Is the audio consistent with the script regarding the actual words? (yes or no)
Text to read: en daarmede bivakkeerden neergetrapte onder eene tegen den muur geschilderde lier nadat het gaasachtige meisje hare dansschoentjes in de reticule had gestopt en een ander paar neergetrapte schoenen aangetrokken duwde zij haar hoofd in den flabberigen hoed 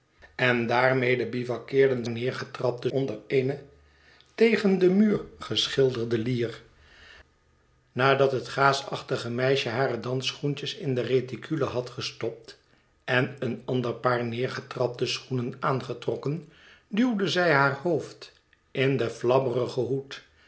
yes